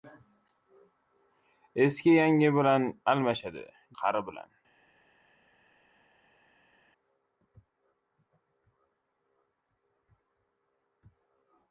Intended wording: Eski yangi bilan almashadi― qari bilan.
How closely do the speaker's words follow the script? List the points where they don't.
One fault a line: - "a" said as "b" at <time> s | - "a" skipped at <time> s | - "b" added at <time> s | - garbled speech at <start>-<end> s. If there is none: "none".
none